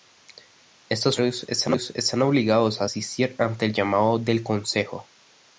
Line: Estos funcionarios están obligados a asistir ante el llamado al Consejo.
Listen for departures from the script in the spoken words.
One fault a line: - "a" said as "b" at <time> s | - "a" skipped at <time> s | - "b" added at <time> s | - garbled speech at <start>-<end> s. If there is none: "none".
- "al" said as "del" at 4.2 s